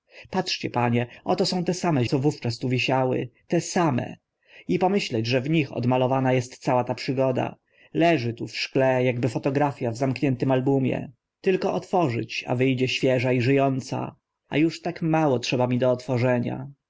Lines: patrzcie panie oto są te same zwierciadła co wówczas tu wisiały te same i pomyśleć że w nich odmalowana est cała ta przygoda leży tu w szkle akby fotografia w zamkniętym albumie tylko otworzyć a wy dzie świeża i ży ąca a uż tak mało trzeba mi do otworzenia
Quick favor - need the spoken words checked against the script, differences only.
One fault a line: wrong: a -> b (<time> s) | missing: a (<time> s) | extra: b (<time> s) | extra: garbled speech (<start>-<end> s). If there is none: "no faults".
missing: zwierciadła (2.0 s)